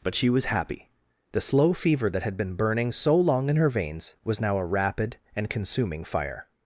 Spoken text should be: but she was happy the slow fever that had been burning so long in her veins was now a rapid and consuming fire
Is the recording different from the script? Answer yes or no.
no